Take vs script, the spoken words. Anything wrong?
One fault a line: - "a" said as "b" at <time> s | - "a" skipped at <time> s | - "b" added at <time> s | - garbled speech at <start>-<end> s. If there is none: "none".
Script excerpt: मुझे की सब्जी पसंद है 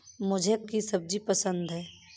none